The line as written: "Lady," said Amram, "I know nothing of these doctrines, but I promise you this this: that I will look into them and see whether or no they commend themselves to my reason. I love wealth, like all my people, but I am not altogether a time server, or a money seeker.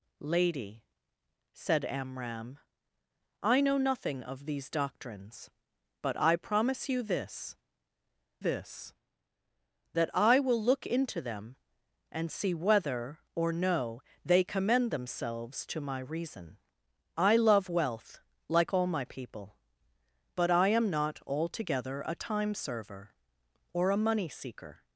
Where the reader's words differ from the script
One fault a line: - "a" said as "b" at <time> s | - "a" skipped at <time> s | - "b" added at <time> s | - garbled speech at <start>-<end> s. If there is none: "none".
none